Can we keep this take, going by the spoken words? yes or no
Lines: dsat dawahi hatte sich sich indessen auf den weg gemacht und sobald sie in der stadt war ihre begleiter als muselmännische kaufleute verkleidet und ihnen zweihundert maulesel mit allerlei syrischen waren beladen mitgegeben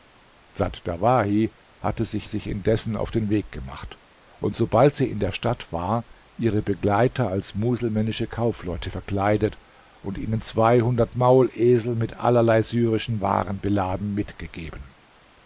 yes